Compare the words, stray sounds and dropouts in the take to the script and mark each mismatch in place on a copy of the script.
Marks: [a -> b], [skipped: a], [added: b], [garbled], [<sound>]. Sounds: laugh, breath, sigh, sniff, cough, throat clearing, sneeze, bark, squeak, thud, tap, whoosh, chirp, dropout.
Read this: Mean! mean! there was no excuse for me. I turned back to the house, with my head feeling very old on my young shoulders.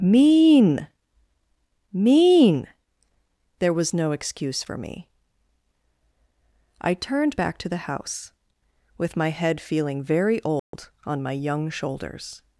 Mean! mean! there was no excuse for me. I turned back to the house, with my head feeling very old [dropout] on my young shoulders.